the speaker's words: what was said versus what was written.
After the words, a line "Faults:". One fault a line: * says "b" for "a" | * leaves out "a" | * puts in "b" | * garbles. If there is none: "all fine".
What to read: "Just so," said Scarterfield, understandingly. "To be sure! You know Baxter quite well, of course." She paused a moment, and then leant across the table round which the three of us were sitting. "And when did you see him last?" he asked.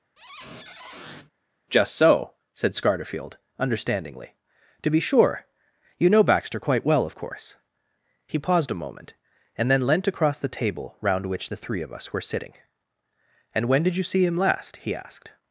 "Just so," said Scarterfield, understandingly. "To be sure! You know Baxter quite well, of course." He paused a moment, and then leant across the table round which the three of us were sitting. "And when did you see him last?" he asked.
Faults:
* says "He" for "She"